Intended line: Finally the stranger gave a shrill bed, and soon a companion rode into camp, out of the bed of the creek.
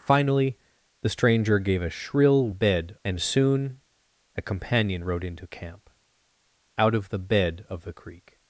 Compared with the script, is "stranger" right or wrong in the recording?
right